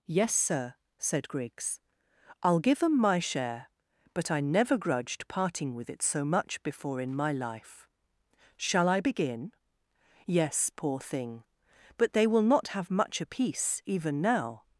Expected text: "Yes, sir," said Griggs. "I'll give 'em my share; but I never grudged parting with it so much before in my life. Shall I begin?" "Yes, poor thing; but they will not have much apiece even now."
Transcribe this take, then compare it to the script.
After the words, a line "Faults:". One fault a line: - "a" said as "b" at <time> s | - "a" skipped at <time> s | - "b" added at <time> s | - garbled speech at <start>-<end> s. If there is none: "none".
"Yes, sir," said Griggs. "I'll give 'em my share; but I never grudged parting with it so much before in my life. Shall I begin?" "Yes, poor thing; but they will not have much apiece even now."
Faults:
none